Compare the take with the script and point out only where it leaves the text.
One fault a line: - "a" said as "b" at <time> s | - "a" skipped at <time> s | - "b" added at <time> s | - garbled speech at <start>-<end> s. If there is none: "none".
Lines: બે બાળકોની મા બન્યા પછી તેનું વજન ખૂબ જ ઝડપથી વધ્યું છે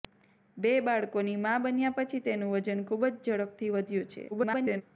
- garbled speech at 4.3-4.8 s